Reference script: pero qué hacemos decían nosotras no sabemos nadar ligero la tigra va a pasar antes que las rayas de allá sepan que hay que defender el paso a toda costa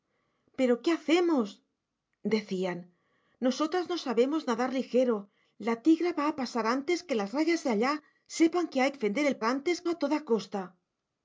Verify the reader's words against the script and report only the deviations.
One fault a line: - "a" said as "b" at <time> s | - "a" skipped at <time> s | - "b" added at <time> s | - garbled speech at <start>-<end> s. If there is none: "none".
- "que" skipped at 8.9 s
- "paso" said as "antes" at 9.4 s